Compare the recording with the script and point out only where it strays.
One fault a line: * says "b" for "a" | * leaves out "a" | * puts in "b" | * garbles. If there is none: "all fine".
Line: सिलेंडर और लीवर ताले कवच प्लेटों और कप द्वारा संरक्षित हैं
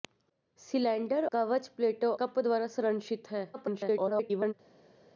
* leaves out "और लीवर ताले"
* leaves out "और"
* garbles